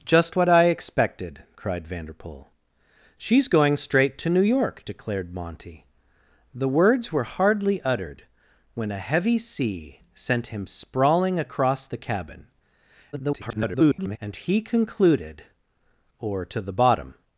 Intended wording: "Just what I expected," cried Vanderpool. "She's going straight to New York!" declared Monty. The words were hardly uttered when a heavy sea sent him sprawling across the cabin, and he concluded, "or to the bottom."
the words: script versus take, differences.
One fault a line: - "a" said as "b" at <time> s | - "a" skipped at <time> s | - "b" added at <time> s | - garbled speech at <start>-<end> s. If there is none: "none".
- garbled speech at 13.1-14.2 s